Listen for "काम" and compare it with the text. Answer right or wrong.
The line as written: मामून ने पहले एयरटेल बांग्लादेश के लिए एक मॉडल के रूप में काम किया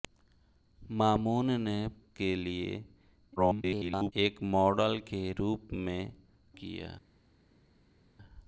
wrong